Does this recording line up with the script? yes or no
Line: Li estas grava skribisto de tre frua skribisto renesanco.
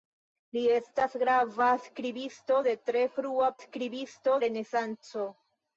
yes